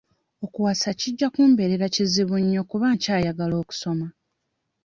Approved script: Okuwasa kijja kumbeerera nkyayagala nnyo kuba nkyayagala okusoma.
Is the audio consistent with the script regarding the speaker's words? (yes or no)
no